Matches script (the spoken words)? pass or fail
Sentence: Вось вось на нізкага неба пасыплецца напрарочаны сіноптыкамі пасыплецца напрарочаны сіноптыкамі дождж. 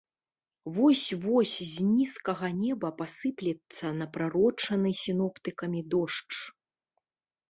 fail